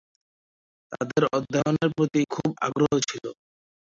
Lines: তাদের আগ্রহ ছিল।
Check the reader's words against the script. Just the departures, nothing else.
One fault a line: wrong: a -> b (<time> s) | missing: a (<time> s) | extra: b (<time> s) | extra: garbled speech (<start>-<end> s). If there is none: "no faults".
extra: অধ্যয়নের প্রতি খুব (1.3 s)